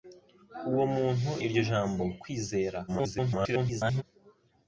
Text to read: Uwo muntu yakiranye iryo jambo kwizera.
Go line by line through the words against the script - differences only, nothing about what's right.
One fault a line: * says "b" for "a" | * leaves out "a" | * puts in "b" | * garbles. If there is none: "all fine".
* leaves out "yakiranye"
* garbles